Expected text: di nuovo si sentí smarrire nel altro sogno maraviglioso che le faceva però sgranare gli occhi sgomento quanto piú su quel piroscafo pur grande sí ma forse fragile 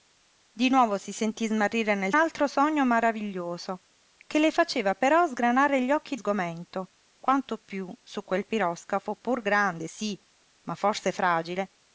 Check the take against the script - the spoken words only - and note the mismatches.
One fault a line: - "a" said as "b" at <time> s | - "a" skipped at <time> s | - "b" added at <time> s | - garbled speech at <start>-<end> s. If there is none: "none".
none